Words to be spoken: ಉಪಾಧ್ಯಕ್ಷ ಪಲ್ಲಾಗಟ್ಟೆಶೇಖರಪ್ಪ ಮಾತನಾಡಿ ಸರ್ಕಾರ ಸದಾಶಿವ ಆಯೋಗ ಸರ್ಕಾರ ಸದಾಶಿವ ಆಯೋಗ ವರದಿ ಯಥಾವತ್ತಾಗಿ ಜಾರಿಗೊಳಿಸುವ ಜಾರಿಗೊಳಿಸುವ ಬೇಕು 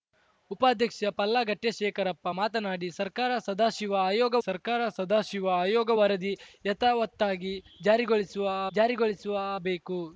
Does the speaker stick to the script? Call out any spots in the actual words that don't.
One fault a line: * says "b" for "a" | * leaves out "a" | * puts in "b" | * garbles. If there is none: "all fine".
all fine